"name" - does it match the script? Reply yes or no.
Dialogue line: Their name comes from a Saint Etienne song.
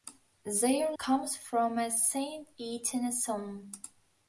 no